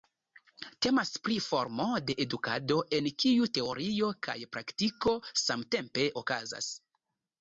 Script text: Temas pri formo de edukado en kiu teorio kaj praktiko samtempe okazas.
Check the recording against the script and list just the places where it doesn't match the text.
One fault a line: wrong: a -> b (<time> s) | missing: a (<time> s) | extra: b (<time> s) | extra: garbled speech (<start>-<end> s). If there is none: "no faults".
no faults